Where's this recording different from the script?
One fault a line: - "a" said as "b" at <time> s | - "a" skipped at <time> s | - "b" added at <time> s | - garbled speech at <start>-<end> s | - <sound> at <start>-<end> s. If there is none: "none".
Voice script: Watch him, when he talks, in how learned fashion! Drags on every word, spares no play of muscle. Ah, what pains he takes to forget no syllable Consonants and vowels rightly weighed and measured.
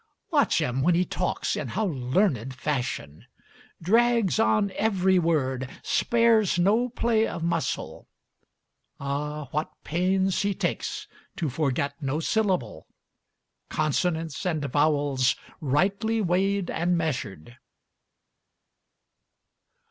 none